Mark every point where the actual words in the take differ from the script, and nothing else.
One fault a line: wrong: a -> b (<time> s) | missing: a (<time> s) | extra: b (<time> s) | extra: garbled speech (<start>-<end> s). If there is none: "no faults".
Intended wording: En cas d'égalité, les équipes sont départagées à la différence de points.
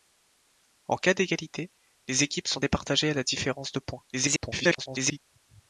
extra: garbled speech (4.1-5.2 s)